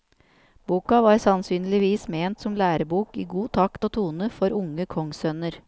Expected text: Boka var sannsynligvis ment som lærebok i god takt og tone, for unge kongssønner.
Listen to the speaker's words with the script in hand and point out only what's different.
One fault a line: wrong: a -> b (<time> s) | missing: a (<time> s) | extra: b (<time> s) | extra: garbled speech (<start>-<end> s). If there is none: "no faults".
no faults